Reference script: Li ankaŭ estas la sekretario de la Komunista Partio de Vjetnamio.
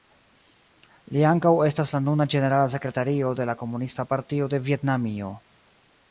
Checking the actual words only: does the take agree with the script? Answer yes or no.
no